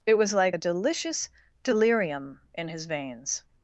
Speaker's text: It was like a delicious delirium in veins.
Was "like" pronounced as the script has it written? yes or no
yes